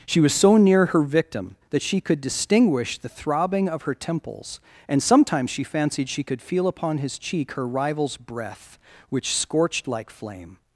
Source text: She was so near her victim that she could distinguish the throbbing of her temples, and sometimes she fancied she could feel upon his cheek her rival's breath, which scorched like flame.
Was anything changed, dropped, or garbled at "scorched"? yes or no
no